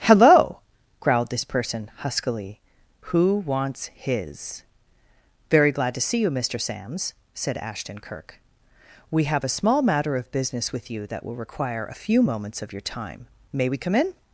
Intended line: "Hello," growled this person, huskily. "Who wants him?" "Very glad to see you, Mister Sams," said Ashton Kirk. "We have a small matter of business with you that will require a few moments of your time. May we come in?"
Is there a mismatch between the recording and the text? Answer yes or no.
yes